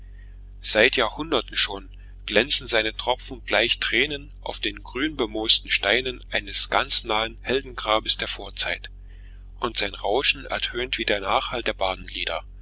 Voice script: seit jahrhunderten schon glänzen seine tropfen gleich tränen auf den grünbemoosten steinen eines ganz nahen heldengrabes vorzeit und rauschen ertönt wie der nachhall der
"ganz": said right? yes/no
yes